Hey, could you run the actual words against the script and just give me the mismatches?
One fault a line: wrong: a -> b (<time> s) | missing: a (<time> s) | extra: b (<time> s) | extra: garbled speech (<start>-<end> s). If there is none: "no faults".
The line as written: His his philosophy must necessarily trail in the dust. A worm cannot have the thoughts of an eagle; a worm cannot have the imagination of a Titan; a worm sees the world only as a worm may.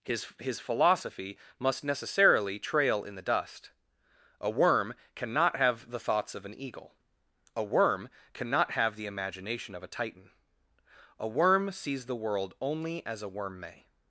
no faults